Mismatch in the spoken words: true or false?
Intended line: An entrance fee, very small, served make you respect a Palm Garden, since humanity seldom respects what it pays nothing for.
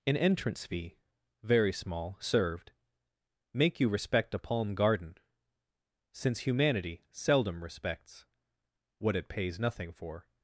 false